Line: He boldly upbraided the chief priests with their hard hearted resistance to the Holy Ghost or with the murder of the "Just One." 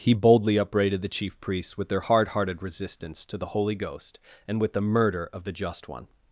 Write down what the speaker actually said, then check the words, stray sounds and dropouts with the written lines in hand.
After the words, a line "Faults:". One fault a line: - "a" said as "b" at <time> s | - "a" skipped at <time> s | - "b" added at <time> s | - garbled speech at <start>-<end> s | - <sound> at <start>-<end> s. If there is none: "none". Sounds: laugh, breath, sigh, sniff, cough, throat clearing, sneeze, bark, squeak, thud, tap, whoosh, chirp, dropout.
He boldly upbraided the chief priests with their hard hearted resistance to the Holy Ghost and with the murder of the "Just One."
Faults:
- "or" said as "and" at 4.5 s